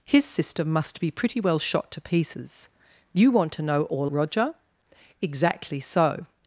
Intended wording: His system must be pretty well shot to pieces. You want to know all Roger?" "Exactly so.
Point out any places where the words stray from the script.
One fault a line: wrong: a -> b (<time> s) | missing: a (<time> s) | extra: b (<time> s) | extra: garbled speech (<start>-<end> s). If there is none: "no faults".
no faults